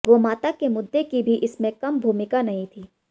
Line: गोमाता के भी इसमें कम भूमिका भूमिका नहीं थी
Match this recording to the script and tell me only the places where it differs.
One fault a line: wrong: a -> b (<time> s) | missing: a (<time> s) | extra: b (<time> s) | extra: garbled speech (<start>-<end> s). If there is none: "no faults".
extra: मुद्दे की (0.7 s)
missing: भूमिका (2.4 s)